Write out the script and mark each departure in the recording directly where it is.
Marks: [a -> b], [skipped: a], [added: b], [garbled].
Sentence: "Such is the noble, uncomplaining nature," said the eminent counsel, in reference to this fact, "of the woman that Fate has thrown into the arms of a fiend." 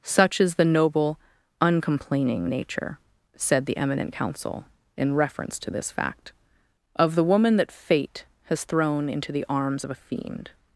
"Such is the noble, uncomplaining nature," said the eminent counsel, in reference to this fact, "of the woman that Fate has thrown into the arms of a fiend."